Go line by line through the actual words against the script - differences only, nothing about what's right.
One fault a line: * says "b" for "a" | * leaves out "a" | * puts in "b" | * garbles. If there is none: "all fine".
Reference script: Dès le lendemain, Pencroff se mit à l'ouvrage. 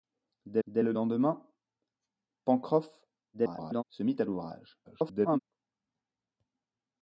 * puts in "dès"
* garbles
* garbles